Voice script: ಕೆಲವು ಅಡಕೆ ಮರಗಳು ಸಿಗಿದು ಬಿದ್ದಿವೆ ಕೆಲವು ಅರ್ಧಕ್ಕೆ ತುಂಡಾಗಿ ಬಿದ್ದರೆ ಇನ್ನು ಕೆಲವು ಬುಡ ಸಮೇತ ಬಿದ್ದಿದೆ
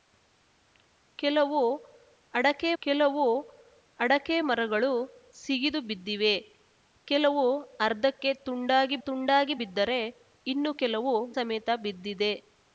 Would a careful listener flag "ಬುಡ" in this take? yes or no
yes